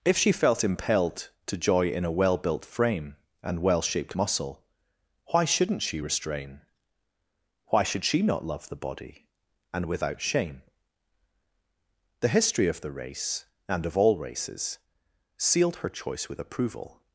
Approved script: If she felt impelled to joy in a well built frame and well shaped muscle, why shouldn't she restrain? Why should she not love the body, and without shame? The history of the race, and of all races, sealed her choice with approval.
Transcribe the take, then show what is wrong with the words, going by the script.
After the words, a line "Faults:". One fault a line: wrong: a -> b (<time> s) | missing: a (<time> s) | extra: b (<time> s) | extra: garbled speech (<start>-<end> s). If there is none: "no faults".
If she felt impelled to joy in a well built frame and well shaped muscle, why shouldn't she restrain? Why should she not love the body, and without shame? The history of the race, and of all races, sealed her choice with approval.
Faults:
no faults